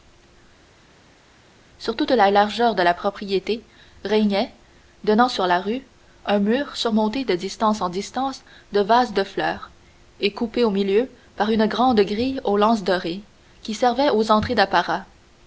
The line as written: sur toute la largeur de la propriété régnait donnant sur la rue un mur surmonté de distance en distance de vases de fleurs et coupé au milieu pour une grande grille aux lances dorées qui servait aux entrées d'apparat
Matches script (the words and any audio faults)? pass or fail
fail